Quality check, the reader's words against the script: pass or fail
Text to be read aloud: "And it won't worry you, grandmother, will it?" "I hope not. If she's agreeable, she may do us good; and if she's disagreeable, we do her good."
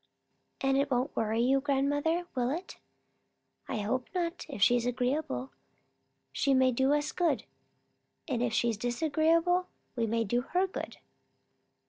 fail